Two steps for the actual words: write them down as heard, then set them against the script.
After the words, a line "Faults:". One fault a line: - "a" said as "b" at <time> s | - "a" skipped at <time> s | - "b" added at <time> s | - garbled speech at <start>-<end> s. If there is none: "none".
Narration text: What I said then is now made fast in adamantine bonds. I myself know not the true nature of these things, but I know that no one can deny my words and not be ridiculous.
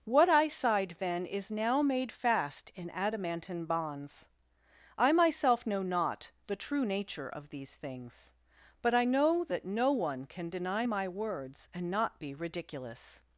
What I sighed then is now made fast in adamantine bonds. I myself know not the true nature of these things, but I know that no one can deny my words and not be ridiculous.
Faults:
- "said" said as "sighed" at 0.5 s